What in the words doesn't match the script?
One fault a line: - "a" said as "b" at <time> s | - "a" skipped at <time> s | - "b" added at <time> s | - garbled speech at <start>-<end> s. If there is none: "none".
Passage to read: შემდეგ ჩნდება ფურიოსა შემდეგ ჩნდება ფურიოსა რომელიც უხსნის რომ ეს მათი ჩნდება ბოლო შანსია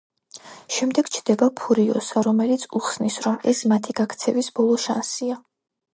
- "შემდეგ ჩნდება ფურიოსა" skipped at 2.2 s
- "ჩნდება" said as "გაქცევის" at 4.0 s